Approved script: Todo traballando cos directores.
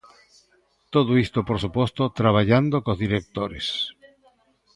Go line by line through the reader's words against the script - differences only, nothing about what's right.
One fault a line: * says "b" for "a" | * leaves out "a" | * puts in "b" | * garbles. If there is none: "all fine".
* puts in "isto por suposto"